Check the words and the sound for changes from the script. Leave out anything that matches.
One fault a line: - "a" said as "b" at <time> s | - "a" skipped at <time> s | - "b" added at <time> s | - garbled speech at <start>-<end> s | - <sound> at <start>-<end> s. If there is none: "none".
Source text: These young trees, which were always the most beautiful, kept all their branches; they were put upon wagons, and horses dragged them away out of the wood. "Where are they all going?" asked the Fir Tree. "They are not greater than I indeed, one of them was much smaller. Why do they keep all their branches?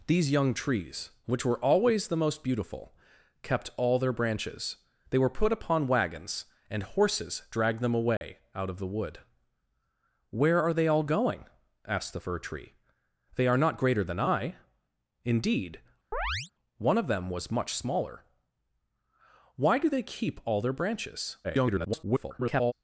- dropout at 8.2-8.2 s
- chirp at 16.1-16.5 s
- garbled speech at 21.4-22.7 s